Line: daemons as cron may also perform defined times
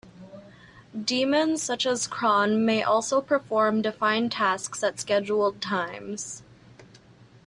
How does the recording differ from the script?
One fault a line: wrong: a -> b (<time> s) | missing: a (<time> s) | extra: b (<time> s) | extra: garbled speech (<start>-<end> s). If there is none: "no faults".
extra: such (1.6 s)
extra: tasks at scheduled (4.3 s)